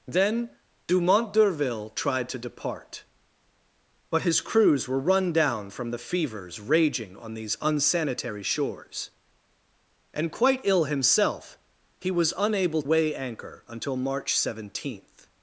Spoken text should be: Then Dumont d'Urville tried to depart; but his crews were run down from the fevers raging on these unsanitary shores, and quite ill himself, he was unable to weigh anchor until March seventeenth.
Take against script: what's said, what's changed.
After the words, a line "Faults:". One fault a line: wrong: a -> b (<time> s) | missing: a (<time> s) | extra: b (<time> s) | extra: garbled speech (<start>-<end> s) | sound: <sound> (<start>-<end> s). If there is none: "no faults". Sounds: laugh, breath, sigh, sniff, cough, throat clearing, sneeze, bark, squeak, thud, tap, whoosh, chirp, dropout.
Then Dumont d'Urville tried to depart; but his crews were run down from the fevers raging on these unsanitary shores, and quite ill himself, he was unable weigh anchor until March seventeenth.
Faults:
missing: to (12.8 s)